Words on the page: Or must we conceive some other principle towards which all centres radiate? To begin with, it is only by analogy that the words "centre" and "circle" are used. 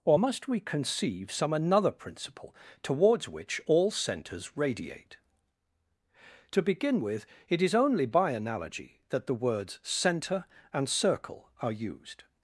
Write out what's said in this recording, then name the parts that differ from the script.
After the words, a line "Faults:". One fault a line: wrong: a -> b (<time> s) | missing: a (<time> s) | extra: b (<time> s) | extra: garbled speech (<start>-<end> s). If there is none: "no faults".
Or must we conceive some another principle towards which all centres radiate? To begin with, it is only by analogy that the words "centre" and "circle" are used.
Faults:
wrong: other -> another (1.5 s)